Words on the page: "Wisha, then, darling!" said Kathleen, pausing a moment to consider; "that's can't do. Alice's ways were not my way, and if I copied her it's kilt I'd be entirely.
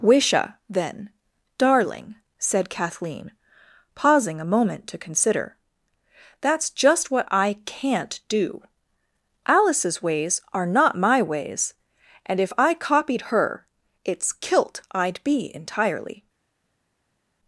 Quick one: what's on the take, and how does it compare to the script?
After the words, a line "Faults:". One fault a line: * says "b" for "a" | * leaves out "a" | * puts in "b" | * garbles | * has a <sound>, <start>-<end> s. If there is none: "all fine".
"Wisha, then, darling!" said Kathleen, pausing a moment to consider; "that's just what I can't do. Alice's ways are not my ways, and if I copied her it's kilt I'd be entirely.
Faults:
* puts in "just what I"
* says "are" for "were"
* says "ways" for "way"